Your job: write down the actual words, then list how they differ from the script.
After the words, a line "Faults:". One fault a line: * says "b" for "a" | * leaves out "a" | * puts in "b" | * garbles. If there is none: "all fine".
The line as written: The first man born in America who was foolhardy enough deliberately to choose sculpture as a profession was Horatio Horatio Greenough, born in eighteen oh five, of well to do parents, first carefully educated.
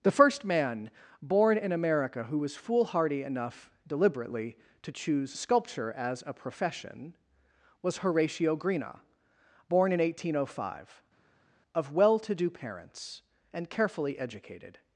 The first man born in America who was foolhardy enough deliberately to choose sculpture as a profession was Horatio Greenough, born in eighteen oh five, of well to do parents, and carefully educated.
Faults:
* leaves out "Horatio"
* says "and" for "first"